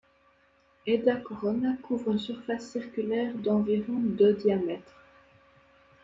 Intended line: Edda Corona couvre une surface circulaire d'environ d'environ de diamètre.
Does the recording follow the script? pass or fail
fail